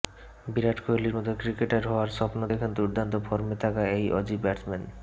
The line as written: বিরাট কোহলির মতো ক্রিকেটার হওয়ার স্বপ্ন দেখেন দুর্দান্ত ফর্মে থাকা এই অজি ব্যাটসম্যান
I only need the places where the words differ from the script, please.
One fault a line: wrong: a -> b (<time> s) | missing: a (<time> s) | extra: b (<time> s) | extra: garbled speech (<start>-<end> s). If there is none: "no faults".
no faults